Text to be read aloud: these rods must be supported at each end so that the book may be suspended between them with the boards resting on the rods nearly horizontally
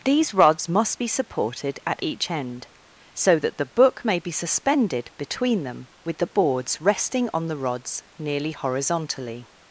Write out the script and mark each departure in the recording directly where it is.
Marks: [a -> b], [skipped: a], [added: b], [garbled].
these rods must be supported at each end so that the book may be suspended between them with the boards resting on the rods nearly horizontally